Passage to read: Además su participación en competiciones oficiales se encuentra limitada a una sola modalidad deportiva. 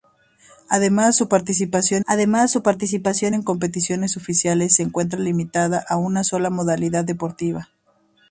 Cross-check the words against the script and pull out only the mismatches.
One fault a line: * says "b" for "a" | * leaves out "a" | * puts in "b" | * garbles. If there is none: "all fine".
* puts in "además su participación"